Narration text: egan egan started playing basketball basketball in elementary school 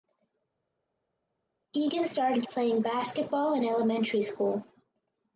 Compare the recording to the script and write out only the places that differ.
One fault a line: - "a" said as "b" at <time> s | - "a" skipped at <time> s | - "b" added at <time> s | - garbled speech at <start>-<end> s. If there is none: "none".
- "egan" skipped at 2.1 s
- "basketball" skipped at 3.5 s